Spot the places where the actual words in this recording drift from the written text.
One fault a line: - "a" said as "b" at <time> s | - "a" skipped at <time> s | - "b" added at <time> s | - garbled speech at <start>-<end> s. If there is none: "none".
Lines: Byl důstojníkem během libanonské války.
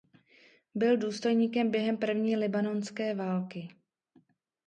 - "první" added at 2.0 s